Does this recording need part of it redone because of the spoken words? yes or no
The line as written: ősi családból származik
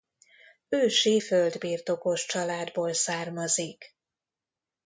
yes